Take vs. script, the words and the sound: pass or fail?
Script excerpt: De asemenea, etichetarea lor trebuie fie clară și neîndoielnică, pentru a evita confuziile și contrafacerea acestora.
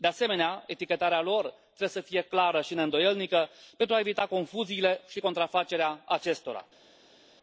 fail